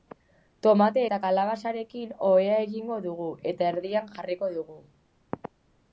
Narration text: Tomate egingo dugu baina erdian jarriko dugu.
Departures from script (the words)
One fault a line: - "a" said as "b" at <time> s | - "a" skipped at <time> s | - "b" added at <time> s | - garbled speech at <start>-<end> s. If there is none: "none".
- "eta kalabazarekin ohea" added at 1.0 s
- "baina" said as "eta" at 3.5 s